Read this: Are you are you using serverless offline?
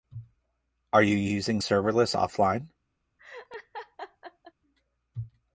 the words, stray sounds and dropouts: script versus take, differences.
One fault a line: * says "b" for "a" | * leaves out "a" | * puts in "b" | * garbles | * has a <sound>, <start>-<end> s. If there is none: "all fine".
* leaves out "are you"
* has a laugh, 3.2-4.5 s